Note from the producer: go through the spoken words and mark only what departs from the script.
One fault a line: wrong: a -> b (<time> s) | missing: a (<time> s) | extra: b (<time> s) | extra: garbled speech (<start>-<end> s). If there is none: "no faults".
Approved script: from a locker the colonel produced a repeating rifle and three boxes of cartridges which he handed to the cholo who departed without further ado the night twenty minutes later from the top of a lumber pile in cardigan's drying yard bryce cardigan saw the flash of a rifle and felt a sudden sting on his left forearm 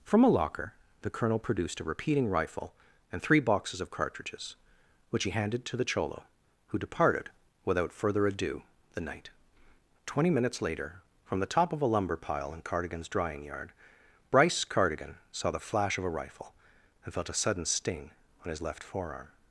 no faults